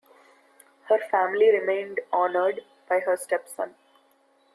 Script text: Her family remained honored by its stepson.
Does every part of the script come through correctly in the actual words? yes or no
no